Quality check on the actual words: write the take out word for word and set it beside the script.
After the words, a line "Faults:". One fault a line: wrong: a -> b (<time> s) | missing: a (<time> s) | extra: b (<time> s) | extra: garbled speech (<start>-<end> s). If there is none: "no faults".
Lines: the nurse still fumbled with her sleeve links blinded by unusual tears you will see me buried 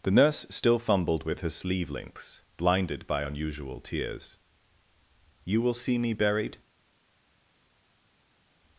the nurse still fumbled with her sleeve links blinded by unusual tears you will see me buried
Faults:
no faults